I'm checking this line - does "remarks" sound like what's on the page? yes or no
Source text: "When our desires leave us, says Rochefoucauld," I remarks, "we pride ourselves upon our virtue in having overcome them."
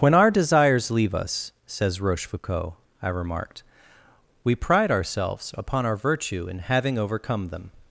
no